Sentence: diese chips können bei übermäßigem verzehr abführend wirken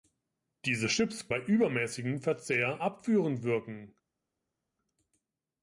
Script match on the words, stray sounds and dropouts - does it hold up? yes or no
no